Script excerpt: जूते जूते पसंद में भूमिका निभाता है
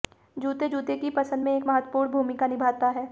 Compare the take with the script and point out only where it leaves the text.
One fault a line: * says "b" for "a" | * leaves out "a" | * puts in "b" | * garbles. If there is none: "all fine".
* puts in "की"
* puts in "एक महत्वपूर्ण"